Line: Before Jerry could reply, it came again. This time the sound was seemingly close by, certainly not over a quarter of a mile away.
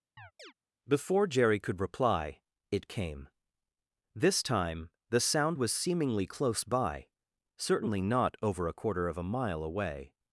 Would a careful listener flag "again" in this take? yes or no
yes